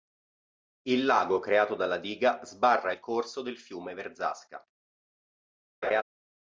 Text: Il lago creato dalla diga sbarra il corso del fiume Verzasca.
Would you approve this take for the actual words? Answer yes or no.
yes